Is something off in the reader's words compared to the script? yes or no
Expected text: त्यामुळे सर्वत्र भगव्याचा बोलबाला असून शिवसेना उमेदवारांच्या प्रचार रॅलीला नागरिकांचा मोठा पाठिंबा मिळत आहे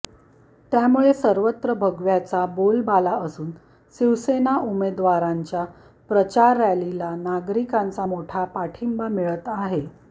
no